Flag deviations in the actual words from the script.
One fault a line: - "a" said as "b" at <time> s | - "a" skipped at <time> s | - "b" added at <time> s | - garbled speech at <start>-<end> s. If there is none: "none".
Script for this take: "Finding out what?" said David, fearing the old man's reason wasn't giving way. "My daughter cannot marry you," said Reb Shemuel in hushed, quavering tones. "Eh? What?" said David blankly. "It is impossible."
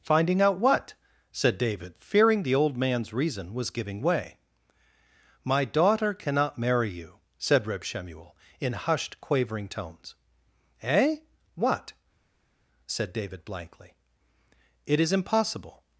- "wasn't" said as "was" at 3.5 s